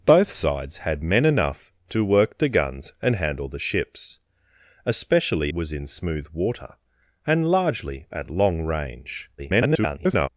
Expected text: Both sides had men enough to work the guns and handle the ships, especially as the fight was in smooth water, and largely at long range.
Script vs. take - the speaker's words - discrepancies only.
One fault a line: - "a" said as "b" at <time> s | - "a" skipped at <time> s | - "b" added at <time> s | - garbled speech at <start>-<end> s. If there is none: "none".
- "as the fight" skipped at 5.5 s
- garbled speech at 9.4-10.3 s